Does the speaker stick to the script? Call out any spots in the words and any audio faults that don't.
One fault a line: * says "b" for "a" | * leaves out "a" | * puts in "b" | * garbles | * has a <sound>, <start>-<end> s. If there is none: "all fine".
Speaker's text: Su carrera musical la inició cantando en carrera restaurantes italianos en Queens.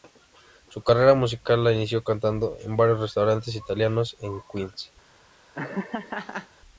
* says "varios" for "carrera"
* has a laugh, 5.5-6.5 s